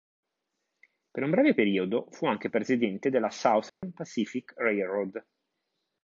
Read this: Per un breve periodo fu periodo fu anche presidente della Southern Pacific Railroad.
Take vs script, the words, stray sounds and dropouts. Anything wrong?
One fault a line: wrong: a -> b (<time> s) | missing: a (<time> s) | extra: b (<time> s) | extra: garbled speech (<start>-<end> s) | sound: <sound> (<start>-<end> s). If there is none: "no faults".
missing: periodo fu (2.2 s)
sound: dropout (3.7-3.8 s)